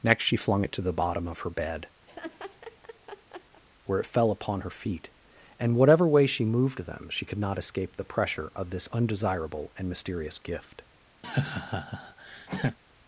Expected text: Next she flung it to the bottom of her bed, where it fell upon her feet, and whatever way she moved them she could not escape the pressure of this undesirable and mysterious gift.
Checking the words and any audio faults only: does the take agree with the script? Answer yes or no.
no